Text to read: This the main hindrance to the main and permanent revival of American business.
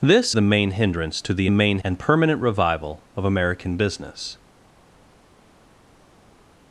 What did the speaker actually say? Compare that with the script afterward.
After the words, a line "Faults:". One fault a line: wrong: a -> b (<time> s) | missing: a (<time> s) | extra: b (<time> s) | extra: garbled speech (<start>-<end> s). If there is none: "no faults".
This the main hindrance to the main and permanent revival of American business.
Faults:
no faults